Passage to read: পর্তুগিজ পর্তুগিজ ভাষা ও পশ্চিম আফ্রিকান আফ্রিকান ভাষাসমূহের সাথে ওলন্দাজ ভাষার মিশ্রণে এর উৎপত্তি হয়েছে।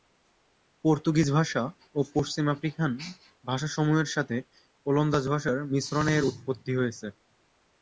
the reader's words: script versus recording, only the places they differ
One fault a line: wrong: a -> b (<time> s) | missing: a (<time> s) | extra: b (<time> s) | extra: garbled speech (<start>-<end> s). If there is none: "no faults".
missing: পর্তুগিজ (1.3 s)
missing: আফ্রিকান (2.9 s)